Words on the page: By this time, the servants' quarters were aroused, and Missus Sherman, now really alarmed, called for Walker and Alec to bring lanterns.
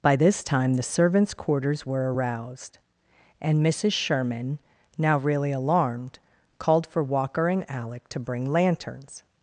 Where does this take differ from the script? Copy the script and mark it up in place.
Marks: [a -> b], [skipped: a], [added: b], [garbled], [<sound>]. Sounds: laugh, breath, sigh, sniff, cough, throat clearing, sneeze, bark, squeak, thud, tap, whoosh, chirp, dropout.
By this time, the servants' quarters were aroused, and Missus Sherman, now really alarmed, called for Walker and Alec to bring lanterns.